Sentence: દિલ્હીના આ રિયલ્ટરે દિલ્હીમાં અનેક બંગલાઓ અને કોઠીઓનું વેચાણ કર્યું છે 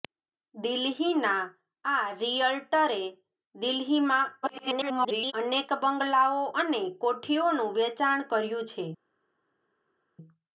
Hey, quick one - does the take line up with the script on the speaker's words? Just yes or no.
no